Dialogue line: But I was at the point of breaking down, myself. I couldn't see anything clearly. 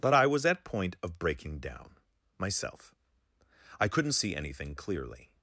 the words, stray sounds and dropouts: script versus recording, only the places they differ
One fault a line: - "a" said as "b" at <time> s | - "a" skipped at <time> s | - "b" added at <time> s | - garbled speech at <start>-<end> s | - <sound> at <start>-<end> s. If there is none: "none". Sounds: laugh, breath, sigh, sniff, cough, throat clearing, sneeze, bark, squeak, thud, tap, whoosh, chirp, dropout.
- "the" skipped at 0.6 s